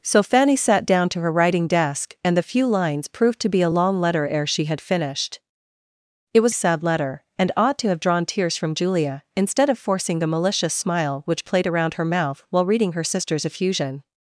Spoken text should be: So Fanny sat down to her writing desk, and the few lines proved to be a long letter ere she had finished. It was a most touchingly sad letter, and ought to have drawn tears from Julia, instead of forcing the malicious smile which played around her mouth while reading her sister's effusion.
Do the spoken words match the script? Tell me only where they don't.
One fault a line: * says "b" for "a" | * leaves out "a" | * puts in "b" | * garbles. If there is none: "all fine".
* leaves out "a most touchingly"